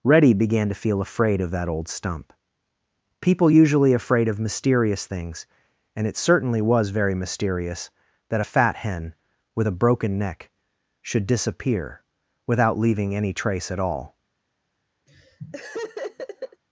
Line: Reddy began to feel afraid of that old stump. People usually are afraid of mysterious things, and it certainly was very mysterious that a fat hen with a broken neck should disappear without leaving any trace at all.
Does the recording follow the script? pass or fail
fail